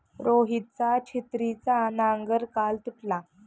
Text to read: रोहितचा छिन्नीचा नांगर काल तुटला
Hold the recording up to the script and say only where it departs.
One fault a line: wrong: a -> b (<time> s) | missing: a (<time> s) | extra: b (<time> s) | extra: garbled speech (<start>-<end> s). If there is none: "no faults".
no faults